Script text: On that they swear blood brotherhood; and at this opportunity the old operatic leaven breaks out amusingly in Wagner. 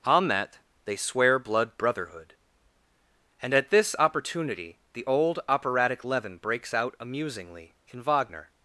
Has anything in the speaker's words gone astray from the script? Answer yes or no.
no